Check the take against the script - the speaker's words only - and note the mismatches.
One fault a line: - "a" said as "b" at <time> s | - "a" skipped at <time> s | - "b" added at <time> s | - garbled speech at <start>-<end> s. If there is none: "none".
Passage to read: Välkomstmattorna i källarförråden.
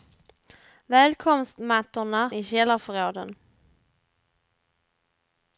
none